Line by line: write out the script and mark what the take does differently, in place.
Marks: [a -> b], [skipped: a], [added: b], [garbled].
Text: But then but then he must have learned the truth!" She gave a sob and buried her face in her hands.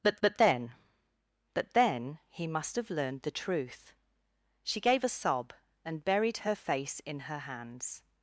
But [added: but] then but then he must have learned the truth!" She gave a sob and buried her face in her hands.